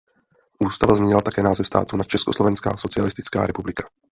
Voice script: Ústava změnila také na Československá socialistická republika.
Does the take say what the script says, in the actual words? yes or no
no